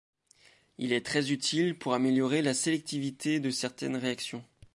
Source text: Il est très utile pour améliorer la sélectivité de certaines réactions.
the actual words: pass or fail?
pass